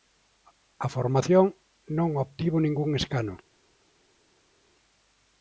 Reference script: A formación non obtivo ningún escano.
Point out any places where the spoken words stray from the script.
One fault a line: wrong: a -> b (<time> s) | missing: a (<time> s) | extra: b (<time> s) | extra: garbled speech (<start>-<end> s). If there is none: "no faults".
no faults